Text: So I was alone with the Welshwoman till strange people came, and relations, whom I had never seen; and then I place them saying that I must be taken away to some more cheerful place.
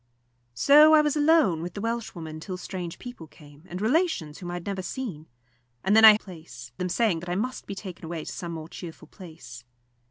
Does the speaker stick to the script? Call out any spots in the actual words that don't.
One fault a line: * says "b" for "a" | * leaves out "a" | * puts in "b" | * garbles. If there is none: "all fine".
all fine